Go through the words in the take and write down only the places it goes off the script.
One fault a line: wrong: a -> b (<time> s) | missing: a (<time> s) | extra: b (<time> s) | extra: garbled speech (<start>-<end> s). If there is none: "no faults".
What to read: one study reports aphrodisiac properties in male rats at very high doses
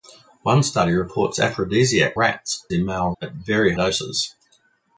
wrong: properties -> rats (2.1 s)
missing: rats (3.1 s)
missing: high (3.7 s)